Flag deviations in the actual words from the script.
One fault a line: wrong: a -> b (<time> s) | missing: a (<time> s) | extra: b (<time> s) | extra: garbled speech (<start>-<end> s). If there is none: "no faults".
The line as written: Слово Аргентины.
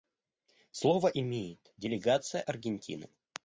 extra: имеет делегация (1.1 s)